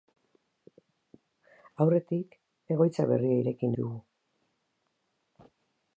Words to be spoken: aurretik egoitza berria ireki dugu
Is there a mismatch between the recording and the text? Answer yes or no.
no